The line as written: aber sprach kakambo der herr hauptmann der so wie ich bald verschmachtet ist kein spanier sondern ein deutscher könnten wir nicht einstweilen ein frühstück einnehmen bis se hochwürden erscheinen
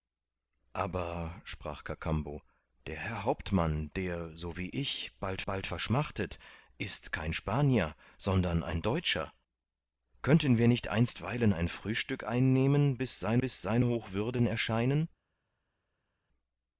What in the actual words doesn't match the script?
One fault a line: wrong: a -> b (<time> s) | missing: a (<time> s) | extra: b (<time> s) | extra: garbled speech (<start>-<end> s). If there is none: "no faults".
extra: bald (5.4 s)
extra: bis se (13.4 s)